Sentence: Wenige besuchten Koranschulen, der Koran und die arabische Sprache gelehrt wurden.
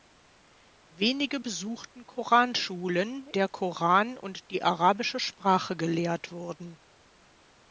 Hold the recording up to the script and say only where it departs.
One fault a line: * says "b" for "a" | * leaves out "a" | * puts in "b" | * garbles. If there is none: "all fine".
all fine